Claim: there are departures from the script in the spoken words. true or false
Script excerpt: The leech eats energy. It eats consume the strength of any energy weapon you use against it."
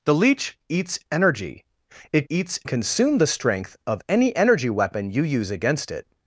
false